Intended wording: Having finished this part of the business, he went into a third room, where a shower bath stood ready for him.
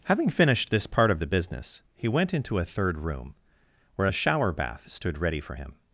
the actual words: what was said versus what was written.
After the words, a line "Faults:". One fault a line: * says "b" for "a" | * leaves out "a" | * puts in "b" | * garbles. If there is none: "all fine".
Having finished this part of the business, he went into a third room, where a shower bath stood ready for him.
Faults:
all fine